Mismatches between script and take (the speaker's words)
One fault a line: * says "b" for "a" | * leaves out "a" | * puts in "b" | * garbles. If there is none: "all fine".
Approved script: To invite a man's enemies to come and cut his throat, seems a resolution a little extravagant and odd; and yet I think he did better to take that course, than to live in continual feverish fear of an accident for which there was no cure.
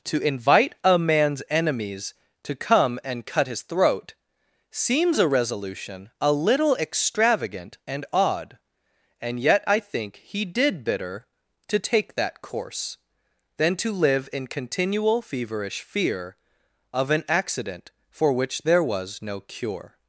* says "bitter" for "better"